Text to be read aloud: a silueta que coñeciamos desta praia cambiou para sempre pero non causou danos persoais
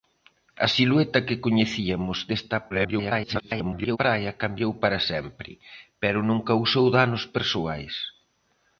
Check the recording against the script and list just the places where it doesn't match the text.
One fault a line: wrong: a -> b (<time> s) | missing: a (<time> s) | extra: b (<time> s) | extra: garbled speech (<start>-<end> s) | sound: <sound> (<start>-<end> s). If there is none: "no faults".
extra: garbled speech (2.7-4.0 s)